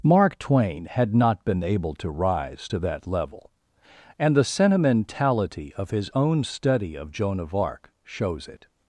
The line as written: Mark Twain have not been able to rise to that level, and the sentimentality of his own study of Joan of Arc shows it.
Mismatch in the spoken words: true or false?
true